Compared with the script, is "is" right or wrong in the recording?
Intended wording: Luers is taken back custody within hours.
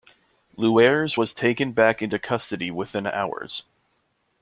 wrong